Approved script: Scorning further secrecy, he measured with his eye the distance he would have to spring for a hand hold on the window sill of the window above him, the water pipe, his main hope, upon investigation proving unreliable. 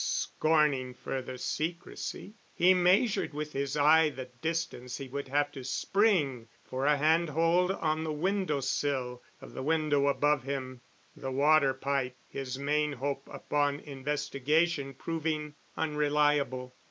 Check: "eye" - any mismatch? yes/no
no